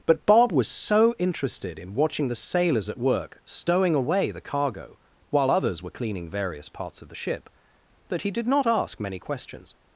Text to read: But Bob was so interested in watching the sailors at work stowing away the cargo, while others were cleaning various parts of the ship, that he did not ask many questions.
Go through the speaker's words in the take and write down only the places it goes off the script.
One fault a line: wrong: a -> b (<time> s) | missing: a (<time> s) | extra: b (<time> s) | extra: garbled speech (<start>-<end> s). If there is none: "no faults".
no faults